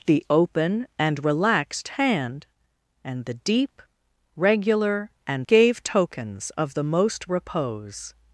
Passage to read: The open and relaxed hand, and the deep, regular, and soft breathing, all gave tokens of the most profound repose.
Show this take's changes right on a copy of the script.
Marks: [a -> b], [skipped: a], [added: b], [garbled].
The open and relaxed hand, and the deep, regular, and [skipped: soft breathing, all] gave tokens of the most [skipped: profound] repose.